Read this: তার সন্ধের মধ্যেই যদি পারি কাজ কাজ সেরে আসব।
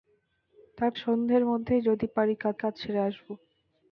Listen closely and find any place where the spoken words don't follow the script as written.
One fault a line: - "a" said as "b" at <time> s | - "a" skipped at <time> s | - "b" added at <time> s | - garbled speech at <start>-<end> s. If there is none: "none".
none